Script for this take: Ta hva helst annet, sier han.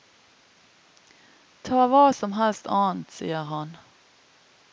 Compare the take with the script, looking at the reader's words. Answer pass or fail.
fail